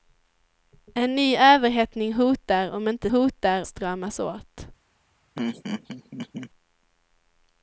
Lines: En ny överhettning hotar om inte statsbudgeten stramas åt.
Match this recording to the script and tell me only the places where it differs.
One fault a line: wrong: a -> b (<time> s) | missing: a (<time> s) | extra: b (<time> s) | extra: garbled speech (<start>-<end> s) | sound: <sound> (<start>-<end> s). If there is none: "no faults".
wrong: statsbudgeten -> hotar (3.1 s)
sound: laugh (5.4-6.5 s)